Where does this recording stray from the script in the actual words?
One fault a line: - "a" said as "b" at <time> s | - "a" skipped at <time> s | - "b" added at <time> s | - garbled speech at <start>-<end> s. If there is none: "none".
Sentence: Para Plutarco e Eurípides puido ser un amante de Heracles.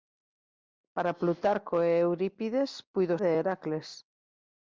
- "ser un amante" skipped at 3.1 s